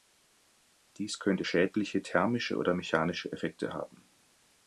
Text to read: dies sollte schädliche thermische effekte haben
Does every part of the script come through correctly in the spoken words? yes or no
no